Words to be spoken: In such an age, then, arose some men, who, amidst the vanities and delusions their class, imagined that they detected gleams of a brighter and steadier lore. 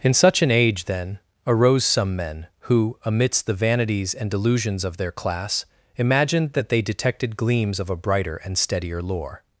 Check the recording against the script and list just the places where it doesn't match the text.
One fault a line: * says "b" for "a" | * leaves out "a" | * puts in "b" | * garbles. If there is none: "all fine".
* puts in "of"